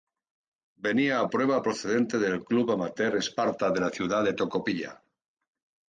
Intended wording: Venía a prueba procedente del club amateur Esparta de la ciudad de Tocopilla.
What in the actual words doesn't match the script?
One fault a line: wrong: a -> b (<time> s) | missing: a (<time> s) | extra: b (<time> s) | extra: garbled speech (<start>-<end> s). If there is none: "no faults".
no faults